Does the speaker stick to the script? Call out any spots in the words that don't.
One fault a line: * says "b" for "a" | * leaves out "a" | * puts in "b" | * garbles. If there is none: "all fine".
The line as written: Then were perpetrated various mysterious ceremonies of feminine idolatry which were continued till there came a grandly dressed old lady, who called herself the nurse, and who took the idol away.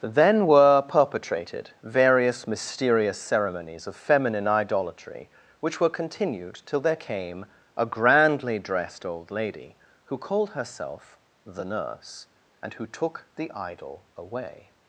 all fine